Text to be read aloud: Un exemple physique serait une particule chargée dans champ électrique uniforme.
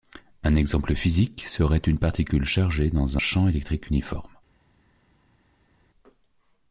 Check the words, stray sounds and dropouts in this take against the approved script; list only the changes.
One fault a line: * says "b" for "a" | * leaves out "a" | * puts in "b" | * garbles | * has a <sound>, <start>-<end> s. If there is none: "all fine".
all fine